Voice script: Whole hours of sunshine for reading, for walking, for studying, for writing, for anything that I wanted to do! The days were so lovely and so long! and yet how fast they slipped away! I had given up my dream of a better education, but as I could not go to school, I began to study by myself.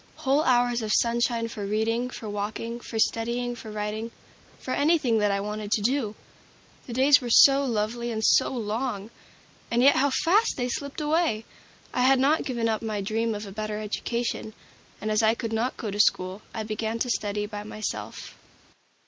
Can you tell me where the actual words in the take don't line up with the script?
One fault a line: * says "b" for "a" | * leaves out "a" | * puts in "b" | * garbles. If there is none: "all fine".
* puts in "not"
* says "and" for "but"